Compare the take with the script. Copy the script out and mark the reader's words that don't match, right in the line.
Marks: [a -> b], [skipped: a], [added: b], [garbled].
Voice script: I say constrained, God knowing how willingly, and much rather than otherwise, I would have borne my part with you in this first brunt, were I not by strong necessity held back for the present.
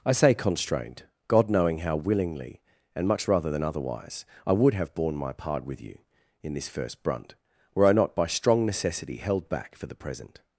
I say constrained, God knowing how willingly, and much rather than otherwise, I would have borne my part with you in this first brunt, were I not by strong necessity held back for the present.